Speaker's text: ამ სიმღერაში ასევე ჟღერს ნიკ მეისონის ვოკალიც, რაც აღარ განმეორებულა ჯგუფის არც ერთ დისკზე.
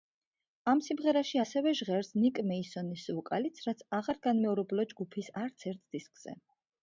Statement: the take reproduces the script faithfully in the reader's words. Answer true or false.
true